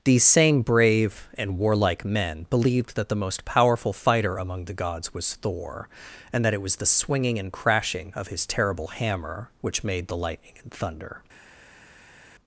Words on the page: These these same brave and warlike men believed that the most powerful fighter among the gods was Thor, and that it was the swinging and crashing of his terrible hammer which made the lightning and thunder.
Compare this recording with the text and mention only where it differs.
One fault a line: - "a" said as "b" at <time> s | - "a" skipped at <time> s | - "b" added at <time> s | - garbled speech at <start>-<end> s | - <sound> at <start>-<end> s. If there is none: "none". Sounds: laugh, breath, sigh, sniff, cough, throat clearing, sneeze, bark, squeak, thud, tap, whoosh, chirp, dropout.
- "these" skipped at 0.2 s